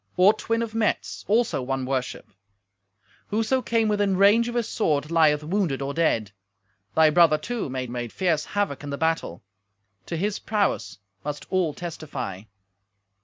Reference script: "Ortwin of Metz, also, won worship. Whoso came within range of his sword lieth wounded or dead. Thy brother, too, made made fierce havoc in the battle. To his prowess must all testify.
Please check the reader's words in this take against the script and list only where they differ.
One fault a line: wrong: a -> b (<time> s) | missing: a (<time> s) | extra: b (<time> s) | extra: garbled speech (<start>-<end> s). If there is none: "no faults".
no faults